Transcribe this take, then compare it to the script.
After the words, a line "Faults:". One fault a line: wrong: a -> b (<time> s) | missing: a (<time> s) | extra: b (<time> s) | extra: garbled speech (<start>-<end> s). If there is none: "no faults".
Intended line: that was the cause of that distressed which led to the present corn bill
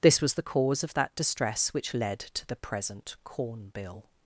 this was the cause of that distress which led to the present corn bill
Faults:
wrong: that -> this (0.0 s)
wrong: distressed -> distress (1.1 s)